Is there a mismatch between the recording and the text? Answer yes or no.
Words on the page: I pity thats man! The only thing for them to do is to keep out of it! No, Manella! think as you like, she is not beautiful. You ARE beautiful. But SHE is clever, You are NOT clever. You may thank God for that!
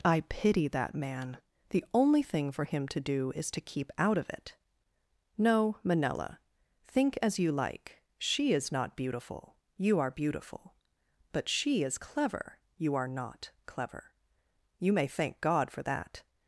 yes